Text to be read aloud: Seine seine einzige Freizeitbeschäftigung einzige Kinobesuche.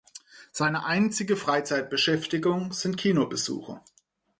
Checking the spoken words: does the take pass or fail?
fail